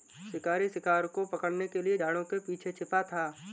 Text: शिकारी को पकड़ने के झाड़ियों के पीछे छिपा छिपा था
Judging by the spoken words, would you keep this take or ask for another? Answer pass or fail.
fail